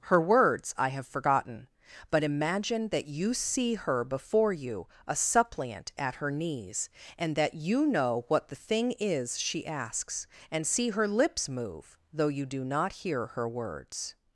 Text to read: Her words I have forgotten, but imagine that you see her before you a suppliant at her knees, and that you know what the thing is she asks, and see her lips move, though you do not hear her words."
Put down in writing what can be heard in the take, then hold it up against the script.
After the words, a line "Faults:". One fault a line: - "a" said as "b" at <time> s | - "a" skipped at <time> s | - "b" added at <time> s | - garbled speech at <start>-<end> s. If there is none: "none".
Her words I have forgotten, but imagine that you see her before you a suppliant at her knees, and that you know what the thing is she asks, and see her lips move, though you do not hear her words."
Faults:
none